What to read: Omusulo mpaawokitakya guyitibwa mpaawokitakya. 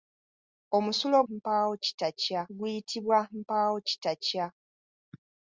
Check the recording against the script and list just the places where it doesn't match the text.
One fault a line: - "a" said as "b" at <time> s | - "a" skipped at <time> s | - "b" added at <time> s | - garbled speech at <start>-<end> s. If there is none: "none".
none